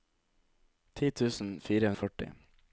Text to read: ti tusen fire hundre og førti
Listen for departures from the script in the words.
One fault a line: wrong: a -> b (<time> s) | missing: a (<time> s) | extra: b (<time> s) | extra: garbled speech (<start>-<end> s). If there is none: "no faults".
missing: hundre (1.9 s)